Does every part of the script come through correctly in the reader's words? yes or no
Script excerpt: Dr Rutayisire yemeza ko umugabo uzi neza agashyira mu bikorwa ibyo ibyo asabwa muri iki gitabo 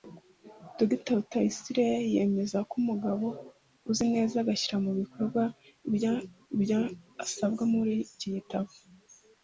yes